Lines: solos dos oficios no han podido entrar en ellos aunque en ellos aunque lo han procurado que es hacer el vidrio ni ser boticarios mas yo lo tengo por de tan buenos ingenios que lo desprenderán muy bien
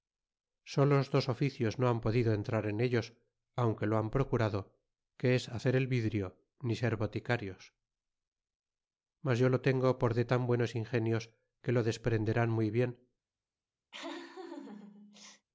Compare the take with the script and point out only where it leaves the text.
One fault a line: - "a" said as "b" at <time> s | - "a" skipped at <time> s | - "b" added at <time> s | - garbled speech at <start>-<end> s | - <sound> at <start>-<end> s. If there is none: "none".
- "en ellos aunque" skipped at 3.9 s
- laugh at 13.9-15.5 s